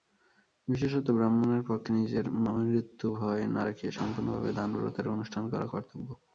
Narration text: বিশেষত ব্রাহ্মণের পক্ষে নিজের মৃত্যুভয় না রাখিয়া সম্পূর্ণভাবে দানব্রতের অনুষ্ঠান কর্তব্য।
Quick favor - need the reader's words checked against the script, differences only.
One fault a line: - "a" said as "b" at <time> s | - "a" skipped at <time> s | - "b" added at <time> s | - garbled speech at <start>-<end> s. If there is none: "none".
- "করা" added at 5.5 s